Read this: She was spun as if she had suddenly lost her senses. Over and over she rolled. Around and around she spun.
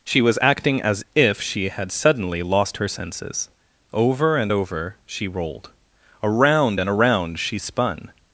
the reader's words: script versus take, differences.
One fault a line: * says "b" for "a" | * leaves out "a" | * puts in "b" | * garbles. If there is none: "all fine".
* says "acting" for "spun"